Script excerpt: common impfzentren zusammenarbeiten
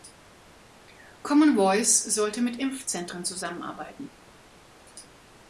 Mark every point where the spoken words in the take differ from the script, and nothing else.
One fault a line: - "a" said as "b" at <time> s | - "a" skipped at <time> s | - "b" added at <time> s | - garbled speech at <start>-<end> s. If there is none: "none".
- "voice sollte mit" added at 1.6 s